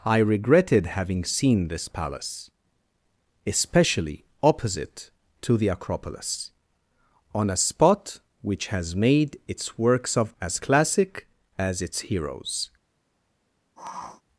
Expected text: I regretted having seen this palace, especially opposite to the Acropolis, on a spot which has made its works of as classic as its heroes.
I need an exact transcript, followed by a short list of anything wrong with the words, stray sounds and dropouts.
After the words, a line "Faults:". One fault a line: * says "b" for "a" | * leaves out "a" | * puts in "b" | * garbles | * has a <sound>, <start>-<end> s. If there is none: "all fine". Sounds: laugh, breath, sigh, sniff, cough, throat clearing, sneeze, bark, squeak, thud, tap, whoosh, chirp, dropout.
I regretted having seen this palace, especially opposite to the Acropolis, on a spot which has made its works of as classic as its heroes.
Faults:
* has a sniff, 13.8-14.2 s